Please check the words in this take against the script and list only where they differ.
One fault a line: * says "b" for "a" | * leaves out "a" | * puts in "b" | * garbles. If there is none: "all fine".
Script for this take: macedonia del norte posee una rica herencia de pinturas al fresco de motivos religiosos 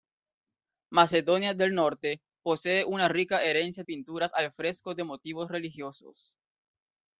* leaves out "de"